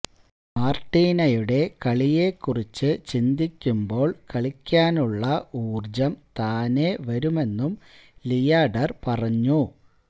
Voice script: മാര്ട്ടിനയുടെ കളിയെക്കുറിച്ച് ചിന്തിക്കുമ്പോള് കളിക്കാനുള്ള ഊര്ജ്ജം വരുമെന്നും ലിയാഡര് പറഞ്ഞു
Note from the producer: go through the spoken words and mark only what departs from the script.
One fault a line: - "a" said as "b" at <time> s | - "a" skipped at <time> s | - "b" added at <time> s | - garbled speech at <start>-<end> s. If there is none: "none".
- "താനേ" added at 6.4 s